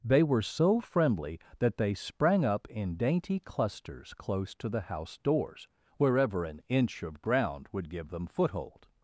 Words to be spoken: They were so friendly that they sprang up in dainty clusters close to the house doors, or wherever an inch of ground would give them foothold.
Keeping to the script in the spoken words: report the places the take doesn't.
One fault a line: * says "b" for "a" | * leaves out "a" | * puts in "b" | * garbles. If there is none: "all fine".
* leaves out "or"